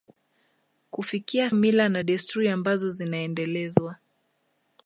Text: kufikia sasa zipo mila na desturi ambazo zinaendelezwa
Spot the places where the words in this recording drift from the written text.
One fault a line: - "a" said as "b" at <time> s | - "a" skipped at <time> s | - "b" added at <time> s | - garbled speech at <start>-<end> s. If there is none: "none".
- "sasa zipo" skipped at 1.5 s